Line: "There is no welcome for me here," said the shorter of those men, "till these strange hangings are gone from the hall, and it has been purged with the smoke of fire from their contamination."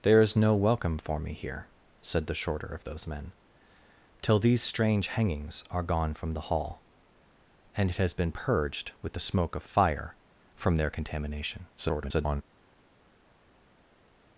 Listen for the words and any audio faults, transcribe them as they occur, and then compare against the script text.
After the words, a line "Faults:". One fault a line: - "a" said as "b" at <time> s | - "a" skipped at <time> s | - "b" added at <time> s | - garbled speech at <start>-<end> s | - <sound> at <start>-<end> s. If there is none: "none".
"There is no welcome for me here," said the shorter of those men, "till these strange hangings are gone from the hall, and it has been purged with the smoke of fire from their contamination." [garbled]
Faults:
- garbled speech at 11.8-12.4 s